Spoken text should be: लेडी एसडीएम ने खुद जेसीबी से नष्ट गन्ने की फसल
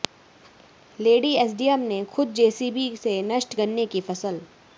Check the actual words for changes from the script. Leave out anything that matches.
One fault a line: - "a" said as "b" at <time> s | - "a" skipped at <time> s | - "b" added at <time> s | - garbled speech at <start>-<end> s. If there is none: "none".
none